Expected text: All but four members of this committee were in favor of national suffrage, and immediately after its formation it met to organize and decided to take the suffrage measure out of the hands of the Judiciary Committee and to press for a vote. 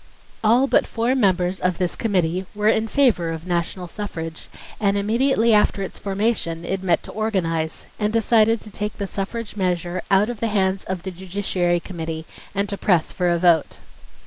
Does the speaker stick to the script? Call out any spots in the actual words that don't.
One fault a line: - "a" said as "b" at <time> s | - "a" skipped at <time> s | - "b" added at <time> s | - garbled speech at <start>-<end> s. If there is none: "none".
none